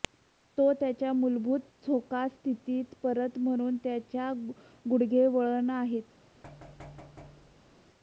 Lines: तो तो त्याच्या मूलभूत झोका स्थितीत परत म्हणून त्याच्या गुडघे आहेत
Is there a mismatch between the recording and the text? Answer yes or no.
yes